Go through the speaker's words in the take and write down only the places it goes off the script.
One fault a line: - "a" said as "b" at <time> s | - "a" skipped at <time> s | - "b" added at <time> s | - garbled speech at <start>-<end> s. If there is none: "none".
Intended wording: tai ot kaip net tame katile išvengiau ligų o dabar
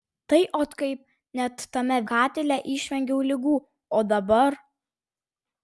none